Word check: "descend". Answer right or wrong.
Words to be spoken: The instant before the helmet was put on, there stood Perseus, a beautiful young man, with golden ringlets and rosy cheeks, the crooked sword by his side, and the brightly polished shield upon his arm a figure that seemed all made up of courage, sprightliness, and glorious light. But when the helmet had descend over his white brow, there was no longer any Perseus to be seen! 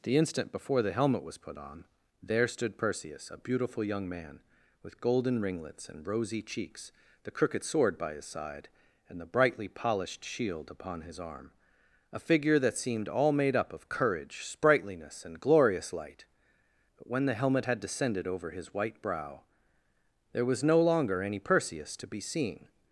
wrong